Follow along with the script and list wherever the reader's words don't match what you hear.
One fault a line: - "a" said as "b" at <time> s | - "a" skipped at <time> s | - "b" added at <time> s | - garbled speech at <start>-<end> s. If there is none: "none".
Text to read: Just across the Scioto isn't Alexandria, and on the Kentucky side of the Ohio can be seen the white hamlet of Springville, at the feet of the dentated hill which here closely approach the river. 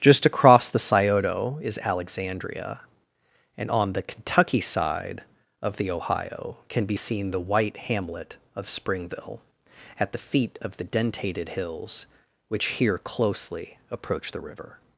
- "isn't" said as "is" at 1.6 s
- "hill" said as "hills" at 11.5 s